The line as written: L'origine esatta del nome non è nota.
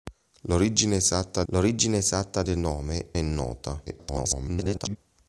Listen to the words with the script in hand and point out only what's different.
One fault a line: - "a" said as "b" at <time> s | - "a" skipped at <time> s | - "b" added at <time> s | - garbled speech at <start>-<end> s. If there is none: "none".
- "l'origine esatta" added at 1.5 s
- "non" skipped at 3.1 s
- garbled speech at 3.9-5.0 s